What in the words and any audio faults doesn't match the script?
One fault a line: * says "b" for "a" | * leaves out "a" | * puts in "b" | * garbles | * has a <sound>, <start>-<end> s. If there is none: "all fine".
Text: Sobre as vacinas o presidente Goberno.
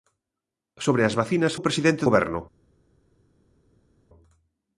all fine